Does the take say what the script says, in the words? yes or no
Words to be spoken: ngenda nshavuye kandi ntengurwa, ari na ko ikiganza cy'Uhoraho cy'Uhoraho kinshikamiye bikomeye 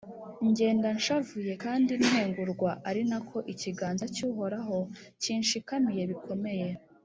no